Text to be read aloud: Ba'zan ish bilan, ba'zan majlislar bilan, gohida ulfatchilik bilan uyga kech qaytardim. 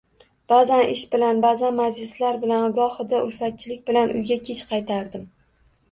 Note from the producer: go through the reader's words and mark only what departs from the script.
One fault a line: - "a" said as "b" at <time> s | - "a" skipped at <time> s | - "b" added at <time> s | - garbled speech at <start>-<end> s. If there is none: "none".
none